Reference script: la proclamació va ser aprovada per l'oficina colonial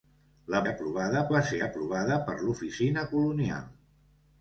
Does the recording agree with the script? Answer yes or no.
no